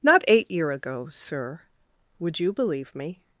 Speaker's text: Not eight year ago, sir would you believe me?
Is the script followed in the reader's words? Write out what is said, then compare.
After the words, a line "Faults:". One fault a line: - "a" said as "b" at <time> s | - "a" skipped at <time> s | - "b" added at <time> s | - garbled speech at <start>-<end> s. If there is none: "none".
Not eight year ago, sir would you believe me?
Faults:
none